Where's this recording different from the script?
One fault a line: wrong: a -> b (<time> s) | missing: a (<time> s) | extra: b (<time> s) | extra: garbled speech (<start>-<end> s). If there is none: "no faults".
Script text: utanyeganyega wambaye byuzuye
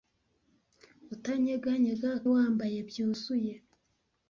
no faults